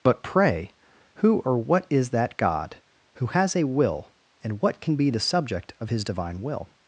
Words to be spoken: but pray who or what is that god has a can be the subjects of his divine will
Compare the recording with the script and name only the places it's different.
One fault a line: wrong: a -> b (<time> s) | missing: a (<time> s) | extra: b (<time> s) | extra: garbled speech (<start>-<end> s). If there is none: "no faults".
extra: who (3.1 s)
extra: will and what (3.6 s)
wrong: subjects -> subject (5.2 s)